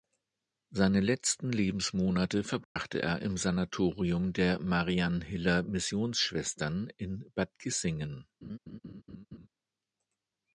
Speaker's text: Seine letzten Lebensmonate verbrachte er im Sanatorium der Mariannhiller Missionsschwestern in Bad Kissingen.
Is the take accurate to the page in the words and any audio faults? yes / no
no